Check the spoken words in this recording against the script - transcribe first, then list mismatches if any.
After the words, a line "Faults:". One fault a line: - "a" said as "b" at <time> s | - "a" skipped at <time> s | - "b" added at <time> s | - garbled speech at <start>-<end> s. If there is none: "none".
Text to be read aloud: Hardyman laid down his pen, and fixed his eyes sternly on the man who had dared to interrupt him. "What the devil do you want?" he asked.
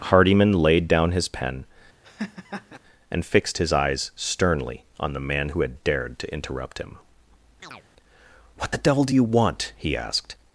Hardyman laid down his pen, and fixed his eyes sternly on the man who had dared to interrupt him. "What the devil do you want?" he asked.
Faults:
none